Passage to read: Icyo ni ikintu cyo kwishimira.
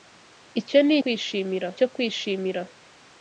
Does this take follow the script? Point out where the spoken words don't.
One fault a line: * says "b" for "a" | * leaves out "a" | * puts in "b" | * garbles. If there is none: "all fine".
* says "kwishimira" for "ikintu"